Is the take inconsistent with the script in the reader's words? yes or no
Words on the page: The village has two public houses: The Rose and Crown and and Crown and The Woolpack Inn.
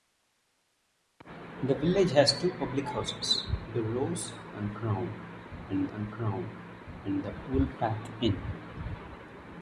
no